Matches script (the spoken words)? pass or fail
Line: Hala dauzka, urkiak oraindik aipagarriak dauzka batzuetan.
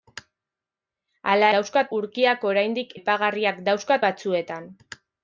pass